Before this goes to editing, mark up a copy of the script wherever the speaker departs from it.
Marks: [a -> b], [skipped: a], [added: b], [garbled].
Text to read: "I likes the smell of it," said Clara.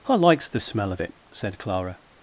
"I likes the smell of it," said Clara.